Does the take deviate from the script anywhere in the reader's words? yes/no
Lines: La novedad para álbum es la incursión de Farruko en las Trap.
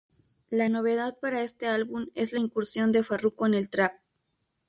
yes